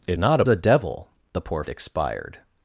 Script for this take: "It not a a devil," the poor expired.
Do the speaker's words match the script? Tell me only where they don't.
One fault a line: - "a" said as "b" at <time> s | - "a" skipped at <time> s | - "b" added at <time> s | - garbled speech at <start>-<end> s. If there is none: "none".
none